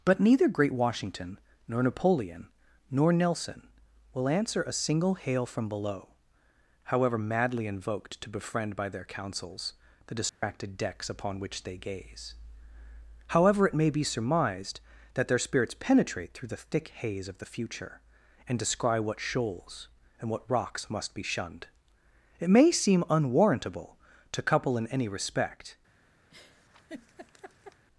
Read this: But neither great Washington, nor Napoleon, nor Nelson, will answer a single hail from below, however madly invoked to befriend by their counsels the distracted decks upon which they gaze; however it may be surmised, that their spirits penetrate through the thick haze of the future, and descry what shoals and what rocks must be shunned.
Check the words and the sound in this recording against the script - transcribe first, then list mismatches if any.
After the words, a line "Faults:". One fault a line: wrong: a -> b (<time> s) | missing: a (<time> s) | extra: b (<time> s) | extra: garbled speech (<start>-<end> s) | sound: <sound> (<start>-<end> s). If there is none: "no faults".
But neither great Washington, nor Napoleon, nor Nelson, will answer a single hail from below, however madly invoked to befriend by their counsels the distracted decks upon which they gaze; however it may be surmised, that their spirits penetrate through the thick haze of the future, and descry what shoals and what rocks must be shunned. It may seem unwarrantable to couple in any respect
Faults:
sound: dropout (10.3-10.4 s)
extra: It may seem unwarrantable to couple in any respect (22.4 s)
sound: laugh (26.3-27.9 s)